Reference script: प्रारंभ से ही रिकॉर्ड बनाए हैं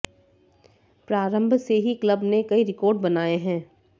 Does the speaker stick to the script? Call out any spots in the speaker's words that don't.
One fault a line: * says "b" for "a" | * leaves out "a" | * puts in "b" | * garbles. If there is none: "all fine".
* puts in "क्लब ने कई"